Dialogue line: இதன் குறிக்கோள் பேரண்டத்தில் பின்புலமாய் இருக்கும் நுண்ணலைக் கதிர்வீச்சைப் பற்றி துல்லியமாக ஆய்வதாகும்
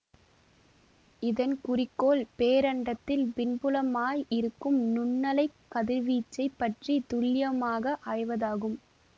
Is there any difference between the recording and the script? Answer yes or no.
no